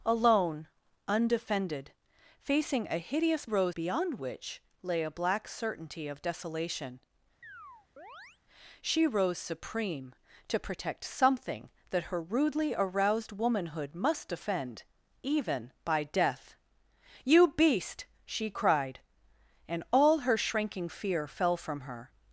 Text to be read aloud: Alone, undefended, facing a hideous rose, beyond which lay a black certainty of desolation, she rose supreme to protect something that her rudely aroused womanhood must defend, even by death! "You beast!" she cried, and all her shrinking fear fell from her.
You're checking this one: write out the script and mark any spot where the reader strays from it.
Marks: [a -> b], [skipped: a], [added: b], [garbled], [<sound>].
Alone, undefended, facing a hideous rose, beyond which lay a black certainty of desolation, [chirp] she rose supreme to protect something that her rudely aroused womanhood must defend, even by death! "You beast!" she cried, and all her shrinking fear fell from her.